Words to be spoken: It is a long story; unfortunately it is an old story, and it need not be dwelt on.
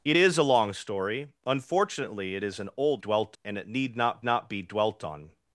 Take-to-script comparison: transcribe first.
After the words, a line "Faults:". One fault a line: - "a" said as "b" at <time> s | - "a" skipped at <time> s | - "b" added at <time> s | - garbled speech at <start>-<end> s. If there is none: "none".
It is a long story; unfortunately it is an old dwelt, and it need not not be dwelt on.
Faults:
- "story" said as "dwelt" at 3.0 s
- "not" added at 4.2 s